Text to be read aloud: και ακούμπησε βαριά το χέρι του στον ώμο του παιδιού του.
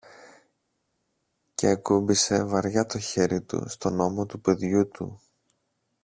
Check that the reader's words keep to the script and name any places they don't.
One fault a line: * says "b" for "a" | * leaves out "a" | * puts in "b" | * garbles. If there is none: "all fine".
all fine